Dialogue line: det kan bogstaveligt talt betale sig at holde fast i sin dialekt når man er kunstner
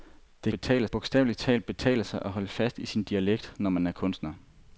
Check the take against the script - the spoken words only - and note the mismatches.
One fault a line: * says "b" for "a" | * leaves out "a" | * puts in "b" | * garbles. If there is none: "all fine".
* says "betale" for "kan"